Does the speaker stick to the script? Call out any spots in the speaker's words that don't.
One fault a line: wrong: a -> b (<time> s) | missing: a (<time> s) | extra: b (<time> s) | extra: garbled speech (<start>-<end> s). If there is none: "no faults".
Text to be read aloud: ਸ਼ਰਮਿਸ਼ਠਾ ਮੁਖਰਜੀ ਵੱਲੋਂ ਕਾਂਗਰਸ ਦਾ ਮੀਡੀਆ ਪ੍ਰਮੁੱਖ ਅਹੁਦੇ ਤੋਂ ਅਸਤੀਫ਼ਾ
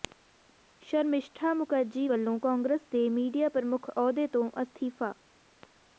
wrong: ਦਾ -> ਦੇ (2.9 s)